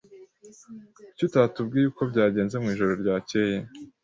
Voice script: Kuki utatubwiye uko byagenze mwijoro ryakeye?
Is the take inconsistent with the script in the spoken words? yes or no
no